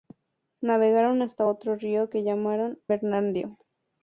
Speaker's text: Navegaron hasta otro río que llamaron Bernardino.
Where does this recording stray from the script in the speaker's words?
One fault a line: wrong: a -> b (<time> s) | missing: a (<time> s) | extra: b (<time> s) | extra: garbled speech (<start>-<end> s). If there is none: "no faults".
no faults